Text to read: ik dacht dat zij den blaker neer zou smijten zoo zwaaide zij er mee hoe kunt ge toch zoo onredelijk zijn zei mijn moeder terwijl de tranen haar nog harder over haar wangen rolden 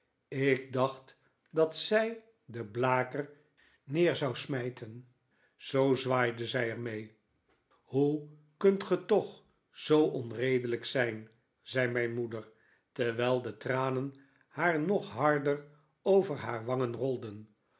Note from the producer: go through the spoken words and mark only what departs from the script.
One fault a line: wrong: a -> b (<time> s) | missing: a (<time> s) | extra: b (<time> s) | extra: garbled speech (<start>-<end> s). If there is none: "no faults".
no faults